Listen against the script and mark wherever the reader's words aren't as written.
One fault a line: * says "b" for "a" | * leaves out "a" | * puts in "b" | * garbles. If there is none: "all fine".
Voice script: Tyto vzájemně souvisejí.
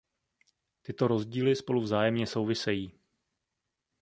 * puts in "rozdíly spolu"